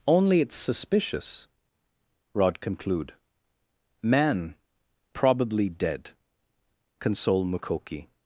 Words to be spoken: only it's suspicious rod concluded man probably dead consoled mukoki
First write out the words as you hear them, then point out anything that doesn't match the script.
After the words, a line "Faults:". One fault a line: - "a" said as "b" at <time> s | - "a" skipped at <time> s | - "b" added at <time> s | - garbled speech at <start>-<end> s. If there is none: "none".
only it's suspicious rod conclude man probably dead console mukoki
Faults:
- "concluded" said as "conclude" at 2.6 s
- "consoled" said as "console" at 7.0 s